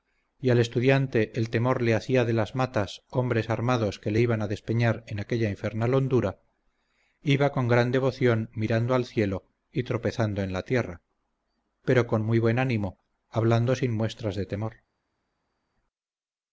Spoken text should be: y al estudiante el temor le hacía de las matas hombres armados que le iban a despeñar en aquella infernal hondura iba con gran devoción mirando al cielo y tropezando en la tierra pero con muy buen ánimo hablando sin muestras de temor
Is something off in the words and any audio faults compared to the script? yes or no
no